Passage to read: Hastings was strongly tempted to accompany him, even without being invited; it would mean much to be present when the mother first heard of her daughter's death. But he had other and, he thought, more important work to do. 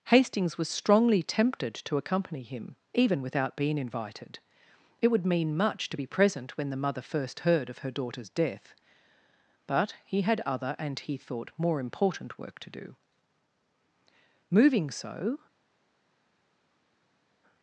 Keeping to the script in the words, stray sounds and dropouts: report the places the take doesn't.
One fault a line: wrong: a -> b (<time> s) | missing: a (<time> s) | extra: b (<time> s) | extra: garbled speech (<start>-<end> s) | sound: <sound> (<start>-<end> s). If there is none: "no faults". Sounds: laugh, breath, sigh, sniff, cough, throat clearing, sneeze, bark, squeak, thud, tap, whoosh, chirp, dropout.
extra: Moving so (14.5 s)